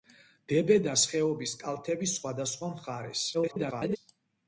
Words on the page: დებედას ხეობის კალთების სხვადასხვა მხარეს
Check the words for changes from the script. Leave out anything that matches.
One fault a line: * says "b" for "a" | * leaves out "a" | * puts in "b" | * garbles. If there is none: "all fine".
* garbles